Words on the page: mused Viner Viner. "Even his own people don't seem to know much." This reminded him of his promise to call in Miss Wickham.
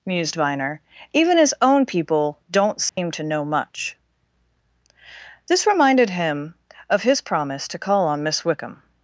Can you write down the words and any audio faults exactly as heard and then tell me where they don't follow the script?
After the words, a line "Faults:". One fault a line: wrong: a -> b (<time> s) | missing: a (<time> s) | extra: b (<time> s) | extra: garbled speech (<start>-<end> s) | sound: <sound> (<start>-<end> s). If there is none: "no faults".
mused Viner. "Even his own people don't seem to know much." This reminded him of his promise to call on Miss Wickham.
Faults:
missing: Viner (0.8 s)
sound: dropout (2.9-3.0 s)
wrong: in -> on (8.1 s)